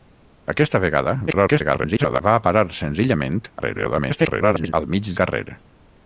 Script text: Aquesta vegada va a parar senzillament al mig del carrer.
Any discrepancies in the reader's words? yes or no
yes